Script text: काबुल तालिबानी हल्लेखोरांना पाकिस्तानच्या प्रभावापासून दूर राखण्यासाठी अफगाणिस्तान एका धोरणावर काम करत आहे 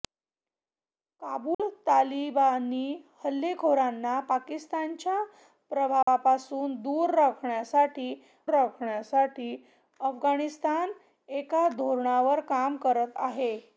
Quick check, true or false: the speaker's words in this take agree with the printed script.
false